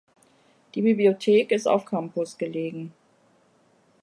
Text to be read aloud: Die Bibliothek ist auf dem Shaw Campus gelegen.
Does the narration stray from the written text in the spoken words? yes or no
yes